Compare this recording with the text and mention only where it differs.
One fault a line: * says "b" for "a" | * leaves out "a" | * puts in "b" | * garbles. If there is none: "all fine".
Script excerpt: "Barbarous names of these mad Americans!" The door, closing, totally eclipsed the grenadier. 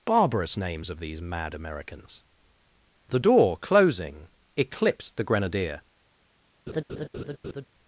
* leaves out "totally"